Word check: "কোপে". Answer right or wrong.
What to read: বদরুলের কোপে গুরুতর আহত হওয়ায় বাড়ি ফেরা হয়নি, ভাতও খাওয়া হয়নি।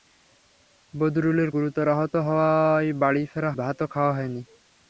wrong